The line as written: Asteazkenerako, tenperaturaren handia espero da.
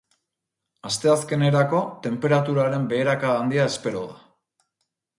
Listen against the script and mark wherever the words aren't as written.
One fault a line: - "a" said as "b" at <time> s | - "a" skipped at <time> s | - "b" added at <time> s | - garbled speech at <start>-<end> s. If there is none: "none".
- "beherakada" added at 3.0 s